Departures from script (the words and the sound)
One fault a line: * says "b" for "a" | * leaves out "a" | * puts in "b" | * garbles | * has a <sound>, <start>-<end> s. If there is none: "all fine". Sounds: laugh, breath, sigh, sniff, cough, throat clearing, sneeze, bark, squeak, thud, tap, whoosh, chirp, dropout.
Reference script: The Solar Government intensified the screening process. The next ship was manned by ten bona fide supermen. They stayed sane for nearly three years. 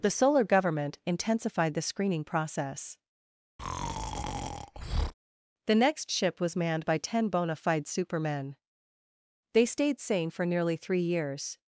* has a breath, 3.6-5.1 s